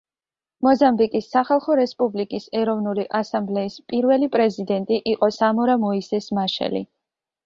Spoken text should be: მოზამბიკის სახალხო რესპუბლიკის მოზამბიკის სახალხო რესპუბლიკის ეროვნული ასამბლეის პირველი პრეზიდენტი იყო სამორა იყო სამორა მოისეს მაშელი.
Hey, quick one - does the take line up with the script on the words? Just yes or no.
no